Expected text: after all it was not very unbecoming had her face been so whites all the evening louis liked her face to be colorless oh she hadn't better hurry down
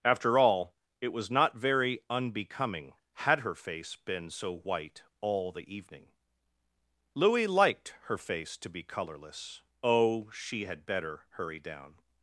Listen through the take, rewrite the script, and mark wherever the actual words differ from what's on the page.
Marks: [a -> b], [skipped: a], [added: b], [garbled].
after all it was not very unbecoming had her face been so [whites -> white] all the evening louis liked her face to be colorless oh she [hadn't -> had] better hurry down